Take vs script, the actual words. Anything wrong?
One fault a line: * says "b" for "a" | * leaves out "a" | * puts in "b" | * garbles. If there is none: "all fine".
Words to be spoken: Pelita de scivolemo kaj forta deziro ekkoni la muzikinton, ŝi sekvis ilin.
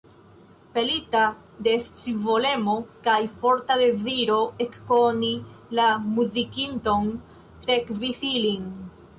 * leaves out "ŝi"